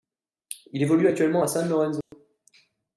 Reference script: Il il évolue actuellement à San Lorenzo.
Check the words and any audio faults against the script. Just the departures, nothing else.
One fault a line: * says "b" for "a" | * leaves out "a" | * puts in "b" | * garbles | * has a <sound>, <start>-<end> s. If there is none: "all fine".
* leaves out "il"
* has a dropout, 2.0-2.1 s